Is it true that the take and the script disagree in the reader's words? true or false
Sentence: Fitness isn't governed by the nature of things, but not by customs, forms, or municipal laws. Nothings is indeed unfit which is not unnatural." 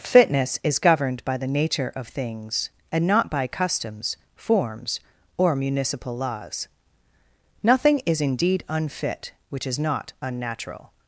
true